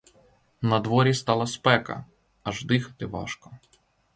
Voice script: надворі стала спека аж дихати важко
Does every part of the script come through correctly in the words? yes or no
yes